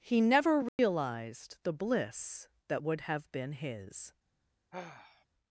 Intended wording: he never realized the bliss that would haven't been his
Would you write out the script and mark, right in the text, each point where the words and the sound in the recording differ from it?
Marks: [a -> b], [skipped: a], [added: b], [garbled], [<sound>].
he never realized [dropout] the bliss that would [haven't -> have] been his [sigh]